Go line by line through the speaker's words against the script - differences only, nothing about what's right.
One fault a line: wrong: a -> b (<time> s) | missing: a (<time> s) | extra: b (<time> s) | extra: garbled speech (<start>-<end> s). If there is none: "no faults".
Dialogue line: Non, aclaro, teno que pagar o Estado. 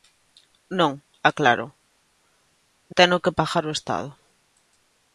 no faults